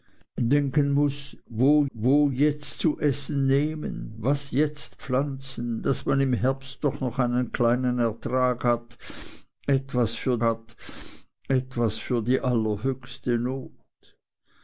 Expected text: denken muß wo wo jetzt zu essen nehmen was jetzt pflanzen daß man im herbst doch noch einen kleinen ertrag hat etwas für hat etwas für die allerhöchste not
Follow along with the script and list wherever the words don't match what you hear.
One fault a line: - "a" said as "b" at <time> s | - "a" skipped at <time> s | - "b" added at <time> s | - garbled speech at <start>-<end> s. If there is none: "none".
none